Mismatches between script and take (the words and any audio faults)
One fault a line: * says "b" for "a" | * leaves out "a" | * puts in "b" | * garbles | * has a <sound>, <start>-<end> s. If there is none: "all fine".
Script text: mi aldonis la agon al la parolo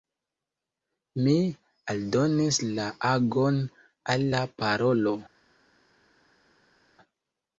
all fine